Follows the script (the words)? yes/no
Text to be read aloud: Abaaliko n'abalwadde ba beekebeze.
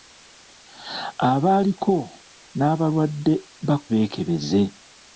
yes